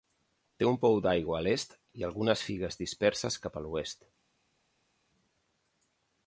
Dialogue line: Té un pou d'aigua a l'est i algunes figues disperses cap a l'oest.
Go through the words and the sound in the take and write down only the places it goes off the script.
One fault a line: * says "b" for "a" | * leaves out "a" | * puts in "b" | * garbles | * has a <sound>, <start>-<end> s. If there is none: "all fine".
all fine